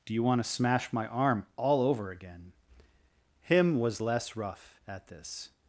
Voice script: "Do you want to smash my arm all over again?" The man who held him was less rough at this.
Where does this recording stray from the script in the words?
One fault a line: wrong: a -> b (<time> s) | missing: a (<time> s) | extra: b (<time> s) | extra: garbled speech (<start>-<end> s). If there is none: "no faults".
missing: The man who held (2.5 s)